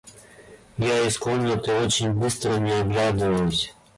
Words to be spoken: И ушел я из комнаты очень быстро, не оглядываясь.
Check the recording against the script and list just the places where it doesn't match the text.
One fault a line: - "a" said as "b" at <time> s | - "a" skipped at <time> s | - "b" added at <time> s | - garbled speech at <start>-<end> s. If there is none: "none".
- "ушел" skipped at 0.8 s